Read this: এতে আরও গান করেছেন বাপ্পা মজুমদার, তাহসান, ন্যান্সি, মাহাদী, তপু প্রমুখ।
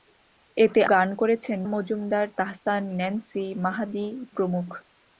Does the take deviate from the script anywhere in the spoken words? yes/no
yes